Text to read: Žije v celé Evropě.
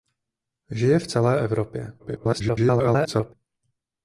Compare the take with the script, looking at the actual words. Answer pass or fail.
fail